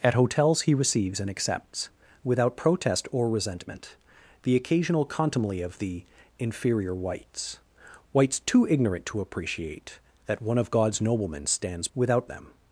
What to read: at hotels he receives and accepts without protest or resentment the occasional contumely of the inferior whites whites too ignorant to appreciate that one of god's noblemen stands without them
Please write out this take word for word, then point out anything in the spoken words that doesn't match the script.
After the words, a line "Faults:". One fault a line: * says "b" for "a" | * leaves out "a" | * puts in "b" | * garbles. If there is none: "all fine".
at hotels he receives and accepts without protest or resentment the occasional contumely of the inferior whites whites too ignorant to appreciate that one of god's noblemen stands without them
Faults:
all fine